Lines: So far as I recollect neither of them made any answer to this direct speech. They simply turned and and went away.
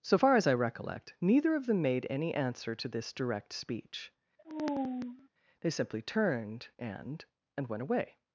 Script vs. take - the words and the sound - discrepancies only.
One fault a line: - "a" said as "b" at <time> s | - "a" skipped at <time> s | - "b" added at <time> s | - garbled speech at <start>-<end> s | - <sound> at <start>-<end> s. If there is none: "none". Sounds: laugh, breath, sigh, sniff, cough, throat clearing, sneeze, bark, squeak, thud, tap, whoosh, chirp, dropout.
- sigh at 4.4-5.3 s